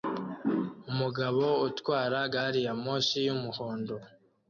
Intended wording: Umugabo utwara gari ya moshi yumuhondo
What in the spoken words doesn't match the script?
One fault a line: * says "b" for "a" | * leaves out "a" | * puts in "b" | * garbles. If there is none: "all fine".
all fine